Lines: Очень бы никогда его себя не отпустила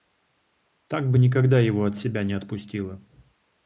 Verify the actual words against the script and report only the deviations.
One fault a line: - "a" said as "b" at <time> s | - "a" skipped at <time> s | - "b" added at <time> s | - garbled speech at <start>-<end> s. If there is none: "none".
- "Очень" said as "Так" at 0.9 s
- "от" added at 1.8 s